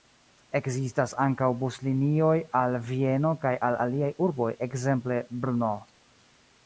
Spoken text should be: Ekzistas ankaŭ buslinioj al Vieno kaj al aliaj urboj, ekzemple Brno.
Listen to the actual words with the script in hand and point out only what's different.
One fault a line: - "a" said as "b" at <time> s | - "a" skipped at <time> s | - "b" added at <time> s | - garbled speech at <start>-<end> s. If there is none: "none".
none